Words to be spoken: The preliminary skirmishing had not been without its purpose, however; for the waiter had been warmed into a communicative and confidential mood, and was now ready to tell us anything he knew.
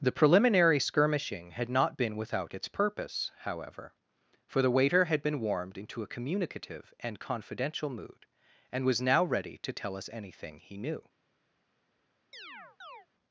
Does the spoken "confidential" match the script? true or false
true